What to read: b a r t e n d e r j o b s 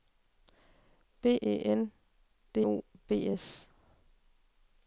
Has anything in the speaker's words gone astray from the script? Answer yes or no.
yes